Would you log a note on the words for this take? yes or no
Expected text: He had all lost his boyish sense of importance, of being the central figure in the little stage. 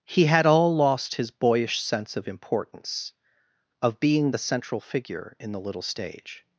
no